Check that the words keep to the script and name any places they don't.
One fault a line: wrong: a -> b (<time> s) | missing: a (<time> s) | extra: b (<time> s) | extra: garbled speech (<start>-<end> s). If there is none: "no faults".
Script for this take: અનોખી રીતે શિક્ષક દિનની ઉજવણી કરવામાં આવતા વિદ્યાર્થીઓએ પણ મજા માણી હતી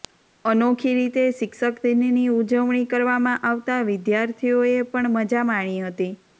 no faults